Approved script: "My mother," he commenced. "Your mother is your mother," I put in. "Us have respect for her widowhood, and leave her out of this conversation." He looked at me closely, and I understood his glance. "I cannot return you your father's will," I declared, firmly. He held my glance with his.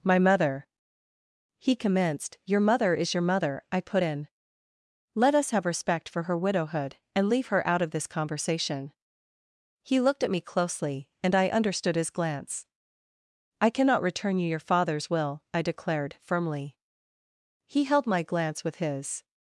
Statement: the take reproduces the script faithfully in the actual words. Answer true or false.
false